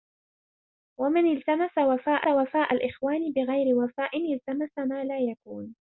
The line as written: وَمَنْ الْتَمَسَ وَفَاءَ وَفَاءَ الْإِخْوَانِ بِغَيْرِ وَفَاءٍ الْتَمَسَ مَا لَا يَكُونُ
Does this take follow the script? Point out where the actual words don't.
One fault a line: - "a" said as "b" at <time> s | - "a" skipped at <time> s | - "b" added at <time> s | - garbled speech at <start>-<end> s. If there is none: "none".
none